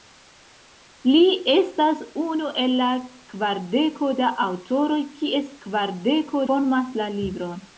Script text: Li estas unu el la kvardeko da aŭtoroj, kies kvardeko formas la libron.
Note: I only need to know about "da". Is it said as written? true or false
true